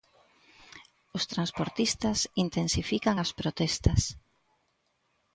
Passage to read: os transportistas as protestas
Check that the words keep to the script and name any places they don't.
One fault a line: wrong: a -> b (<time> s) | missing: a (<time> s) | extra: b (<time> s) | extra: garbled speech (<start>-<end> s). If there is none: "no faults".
extra: intensifican (2.5 s)